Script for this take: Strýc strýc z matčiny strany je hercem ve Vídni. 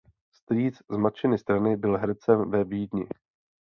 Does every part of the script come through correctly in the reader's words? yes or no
no